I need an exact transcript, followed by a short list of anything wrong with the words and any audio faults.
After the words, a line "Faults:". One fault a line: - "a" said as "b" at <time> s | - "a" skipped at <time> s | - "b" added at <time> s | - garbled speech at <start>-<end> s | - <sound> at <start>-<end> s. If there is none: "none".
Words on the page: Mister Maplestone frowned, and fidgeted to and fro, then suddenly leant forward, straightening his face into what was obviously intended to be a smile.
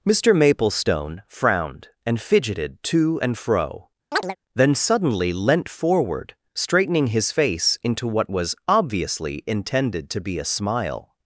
Mister Maplestone frowned, and fidgeted to and fro, then suddenly leant forward, straightening his face into what was obviously intended to be a smile.
Faults:
- chirp at 4.1-4.4 s